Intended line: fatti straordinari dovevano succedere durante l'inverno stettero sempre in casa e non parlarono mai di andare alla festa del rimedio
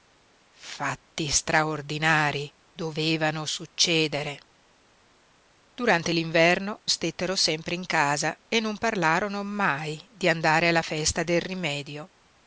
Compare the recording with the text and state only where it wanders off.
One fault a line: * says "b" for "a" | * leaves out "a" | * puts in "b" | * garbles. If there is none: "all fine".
all fine